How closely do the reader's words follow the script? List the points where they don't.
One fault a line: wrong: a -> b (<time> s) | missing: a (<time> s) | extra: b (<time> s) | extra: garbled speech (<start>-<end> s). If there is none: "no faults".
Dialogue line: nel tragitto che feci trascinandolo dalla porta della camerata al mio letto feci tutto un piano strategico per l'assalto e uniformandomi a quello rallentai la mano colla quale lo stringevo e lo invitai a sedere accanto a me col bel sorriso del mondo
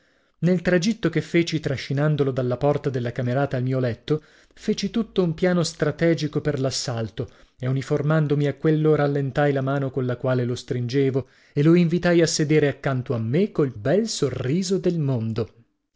no faults